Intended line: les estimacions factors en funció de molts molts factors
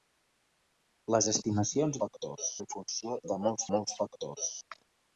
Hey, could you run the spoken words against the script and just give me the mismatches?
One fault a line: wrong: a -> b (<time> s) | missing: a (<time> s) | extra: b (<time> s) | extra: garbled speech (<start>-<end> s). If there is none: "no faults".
no faults